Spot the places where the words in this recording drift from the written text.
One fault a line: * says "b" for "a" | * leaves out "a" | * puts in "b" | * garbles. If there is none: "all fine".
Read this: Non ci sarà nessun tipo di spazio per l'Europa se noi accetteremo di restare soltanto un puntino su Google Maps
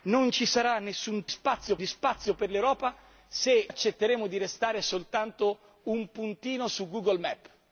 * says "spazio" for "tipo"
* leaves out "noi"